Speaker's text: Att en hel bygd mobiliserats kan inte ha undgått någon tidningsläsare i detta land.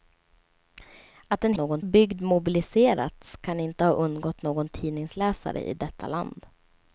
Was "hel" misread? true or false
true